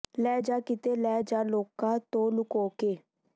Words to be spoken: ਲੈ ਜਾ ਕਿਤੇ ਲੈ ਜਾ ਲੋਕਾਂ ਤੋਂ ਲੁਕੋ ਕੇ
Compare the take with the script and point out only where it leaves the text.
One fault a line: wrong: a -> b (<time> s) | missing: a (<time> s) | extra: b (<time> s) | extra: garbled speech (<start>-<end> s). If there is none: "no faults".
no faults